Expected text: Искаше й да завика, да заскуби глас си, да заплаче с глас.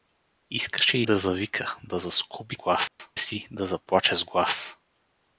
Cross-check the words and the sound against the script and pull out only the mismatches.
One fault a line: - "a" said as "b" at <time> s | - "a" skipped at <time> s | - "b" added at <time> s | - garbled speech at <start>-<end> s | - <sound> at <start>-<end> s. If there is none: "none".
- dropout at 2.9-3.0 s